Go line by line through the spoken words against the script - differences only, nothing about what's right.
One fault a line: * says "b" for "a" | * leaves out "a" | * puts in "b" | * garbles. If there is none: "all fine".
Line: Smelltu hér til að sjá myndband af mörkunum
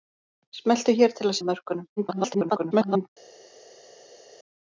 * leaves out "sjá myndband"
* garbles